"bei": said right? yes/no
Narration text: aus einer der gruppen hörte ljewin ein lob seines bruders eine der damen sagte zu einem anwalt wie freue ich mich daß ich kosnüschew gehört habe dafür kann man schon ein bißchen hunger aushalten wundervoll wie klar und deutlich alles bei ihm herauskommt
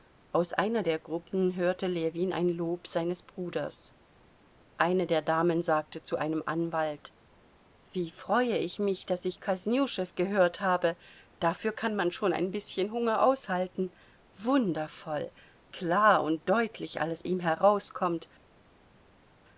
no